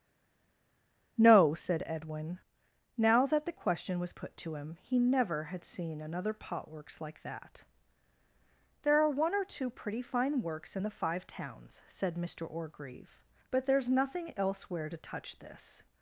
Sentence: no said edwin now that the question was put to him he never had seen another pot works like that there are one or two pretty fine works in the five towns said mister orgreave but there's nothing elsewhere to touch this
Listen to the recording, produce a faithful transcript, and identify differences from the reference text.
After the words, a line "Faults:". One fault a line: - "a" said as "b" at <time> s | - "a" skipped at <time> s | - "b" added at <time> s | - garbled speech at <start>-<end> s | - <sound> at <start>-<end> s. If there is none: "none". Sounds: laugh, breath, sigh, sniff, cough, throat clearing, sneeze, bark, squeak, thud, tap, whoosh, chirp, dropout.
no said edwin now that the question was put to him he never had seen another pot works like that there are one or two pretty fine works in the five towns said mister orgreave but there's nothing elsewhere to touch this
Faults:
none